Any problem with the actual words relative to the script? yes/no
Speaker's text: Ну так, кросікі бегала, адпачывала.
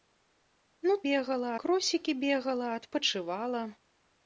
yes